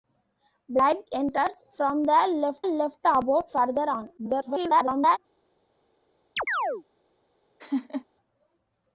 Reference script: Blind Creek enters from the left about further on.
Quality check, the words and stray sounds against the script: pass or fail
fail